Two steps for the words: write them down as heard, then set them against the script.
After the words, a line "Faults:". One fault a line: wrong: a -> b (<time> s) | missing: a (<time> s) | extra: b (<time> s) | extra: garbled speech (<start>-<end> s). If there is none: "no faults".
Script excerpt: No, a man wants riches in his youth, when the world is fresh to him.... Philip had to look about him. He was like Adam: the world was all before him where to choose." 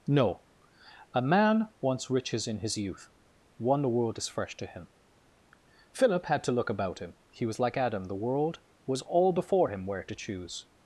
No, a man wants riches in his youth, one the world is fresh to him.... Philip had to look about him. He was like Adam: the world was all before him where to choose."
Faults:
wrong: when -> one (3.6 s)